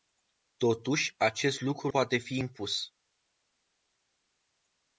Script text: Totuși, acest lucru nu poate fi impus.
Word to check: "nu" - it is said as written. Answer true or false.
false